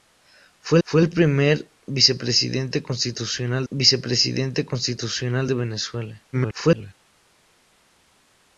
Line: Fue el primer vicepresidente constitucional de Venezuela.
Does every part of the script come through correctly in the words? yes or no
no